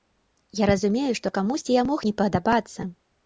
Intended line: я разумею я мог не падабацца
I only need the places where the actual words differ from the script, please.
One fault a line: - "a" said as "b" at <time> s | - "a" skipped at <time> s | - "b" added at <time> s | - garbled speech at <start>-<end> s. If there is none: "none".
- "што камусьці" added at 1.2 s